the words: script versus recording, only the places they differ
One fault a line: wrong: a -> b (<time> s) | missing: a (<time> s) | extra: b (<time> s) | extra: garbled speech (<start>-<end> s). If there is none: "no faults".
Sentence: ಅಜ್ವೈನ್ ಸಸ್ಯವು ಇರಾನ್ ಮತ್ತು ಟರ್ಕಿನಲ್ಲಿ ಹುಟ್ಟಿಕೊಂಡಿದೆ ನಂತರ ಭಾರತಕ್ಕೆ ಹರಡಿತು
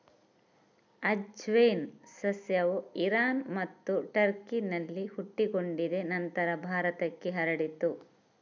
no faults